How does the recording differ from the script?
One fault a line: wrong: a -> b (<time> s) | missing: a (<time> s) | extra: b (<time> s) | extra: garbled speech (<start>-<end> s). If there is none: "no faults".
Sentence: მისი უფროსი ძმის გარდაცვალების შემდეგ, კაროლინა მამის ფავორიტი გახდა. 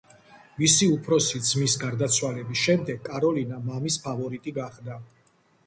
no faults